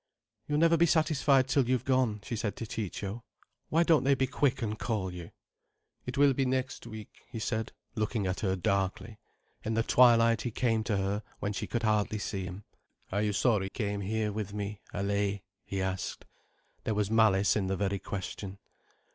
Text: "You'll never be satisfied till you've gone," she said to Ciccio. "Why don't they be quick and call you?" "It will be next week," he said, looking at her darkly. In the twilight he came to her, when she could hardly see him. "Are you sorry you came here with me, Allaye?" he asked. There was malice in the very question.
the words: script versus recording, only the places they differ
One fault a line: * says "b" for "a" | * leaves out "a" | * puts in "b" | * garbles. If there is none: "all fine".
* leaves out "you"